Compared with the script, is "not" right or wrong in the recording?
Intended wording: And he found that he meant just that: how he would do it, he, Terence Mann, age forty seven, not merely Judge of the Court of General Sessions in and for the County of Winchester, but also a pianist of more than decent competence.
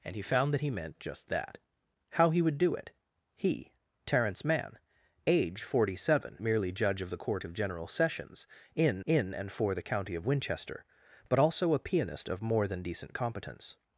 wrong